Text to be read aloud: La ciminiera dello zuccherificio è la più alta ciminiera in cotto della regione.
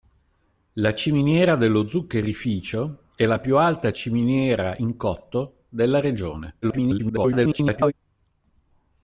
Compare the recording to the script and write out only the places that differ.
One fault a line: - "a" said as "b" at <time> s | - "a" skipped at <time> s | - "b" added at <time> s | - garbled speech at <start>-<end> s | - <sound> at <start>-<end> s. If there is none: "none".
- garbled speech at 6.6-7.9 s